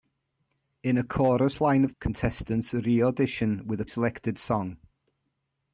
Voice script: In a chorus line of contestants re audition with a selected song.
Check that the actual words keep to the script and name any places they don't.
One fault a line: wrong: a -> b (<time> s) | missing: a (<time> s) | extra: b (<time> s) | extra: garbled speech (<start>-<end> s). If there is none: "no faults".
no faults